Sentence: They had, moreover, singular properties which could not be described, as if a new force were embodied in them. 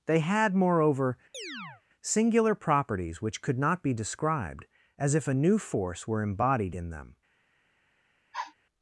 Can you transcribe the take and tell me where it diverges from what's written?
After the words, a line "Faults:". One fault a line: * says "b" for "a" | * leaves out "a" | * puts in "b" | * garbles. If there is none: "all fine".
They had, moreover, singular properties which could not be described, as if a new force were embodied in them.
Faults:
all fine